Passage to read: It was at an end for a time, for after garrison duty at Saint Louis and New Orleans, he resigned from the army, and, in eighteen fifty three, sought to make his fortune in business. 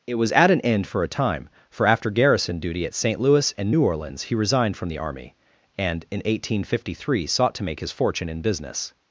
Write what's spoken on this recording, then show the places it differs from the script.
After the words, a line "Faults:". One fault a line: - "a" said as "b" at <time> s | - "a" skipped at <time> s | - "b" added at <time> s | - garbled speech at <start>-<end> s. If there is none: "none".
It was at an end for a time, for after garrison duty at Saint Louis and New Orleans, he resigned from the army, and, in eighteen fifty three, sought to make his fortune in business.
Faults:
none